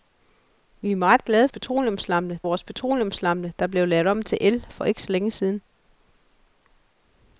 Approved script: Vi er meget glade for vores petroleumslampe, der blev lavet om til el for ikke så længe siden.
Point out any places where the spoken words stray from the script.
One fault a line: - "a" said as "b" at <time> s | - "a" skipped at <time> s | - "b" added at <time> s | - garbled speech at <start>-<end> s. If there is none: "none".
- "for" said as "petroleumslampe" at 1.5 s